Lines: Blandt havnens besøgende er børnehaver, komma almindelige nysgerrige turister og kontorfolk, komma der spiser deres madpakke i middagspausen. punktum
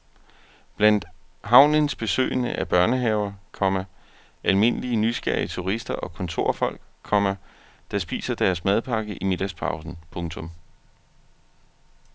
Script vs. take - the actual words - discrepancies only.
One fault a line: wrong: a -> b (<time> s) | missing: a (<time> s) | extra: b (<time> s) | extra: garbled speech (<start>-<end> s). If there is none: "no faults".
no faults